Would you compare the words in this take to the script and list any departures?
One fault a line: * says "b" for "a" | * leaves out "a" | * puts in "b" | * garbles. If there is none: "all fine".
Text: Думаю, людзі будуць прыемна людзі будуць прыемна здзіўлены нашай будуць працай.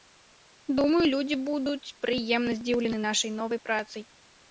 * leaves out "людзі будуць прыемна"
* says "новай" for "будуць"